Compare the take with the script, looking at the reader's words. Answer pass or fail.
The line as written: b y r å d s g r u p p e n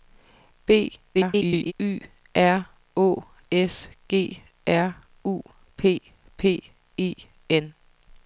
fail